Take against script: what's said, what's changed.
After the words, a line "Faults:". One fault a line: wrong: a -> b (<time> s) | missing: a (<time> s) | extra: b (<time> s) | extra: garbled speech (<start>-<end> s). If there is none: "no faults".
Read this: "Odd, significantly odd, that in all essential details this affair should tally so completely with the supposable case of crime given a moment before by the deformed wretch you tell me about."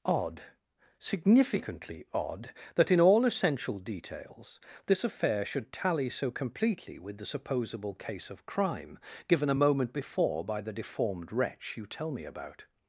"Odd, significantly odd, that in all essential details this affair should tally so completely with the supposable case of crime given a moment before by the deformed wretch you tell me about."
Faults:
no faults